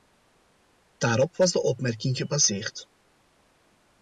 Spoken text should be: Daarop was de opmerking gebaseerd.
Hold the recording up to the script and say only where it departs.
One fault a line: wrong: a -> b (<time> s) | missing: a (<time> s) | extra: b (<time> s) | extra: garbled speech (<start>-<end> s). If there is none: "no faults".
no faults